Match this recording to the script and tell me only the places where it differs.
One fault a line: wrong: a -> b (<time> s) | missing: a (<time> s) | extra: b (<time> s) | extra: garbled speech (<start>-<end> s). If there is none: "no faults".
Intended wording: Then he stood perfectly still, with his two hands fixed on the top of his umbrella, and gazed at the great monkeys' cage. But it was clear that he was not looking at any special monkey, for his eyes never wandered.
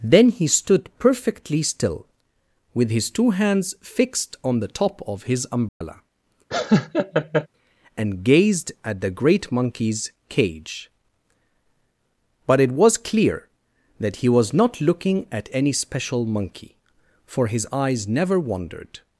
no faults